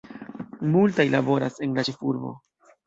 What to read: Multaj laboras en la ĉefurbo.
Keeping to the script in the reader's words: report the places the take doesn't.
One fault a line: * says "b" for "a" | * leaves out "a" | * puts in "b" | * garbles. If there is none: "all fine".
all fine